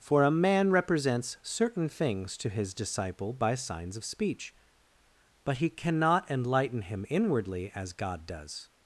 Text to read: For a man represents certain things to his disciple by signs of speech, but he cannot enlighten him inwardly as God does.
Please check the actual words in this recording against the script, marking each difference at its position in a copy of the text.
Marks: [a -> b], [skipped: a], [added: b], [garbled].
For a man represents certain things to his disciple by signs of speech, but he cannot enlighten him inwardly as God does.